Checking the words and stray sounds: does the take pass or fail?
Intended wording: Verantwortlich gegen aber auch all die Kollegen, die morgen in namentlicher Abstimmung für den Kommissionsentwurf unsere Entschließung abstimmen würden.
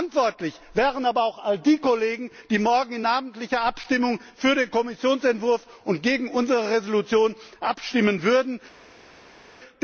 fail